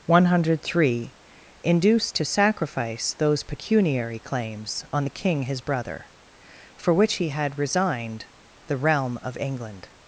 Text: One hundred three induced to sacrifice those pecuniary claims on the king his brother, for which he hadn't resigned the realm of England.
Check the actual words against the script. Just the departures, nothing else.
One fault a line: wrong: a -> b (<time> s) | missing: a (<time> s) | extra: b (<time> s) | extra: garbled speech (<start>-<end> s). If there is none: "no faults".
wrong: hadn't -> had (7.3 s)